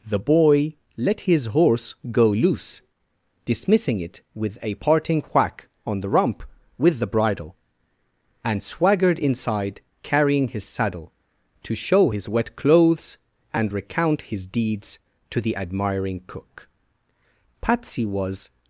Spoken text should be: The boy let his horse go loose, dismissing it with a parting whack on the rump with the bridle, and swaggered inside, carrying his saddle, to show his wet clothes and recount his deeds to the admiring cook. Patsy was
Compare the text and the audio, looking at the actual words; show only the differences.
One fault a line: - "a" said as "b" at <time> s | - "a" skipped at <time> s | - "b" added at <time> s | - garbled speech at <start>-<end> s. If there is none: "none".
none